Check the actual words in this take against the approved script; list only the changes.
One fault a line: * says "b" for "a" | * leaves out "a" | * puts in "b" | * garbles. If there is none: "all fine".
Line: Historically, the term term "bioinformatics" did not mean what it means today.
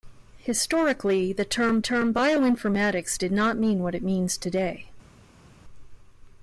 all fine